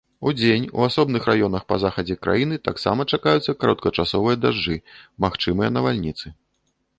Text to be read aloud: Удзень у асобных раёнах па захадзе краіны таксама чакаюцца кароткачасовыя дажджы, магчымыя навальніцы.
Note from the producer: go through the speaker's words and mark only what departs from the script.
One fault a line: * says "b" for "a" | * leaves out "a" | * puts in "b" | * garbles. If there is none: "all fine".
all fine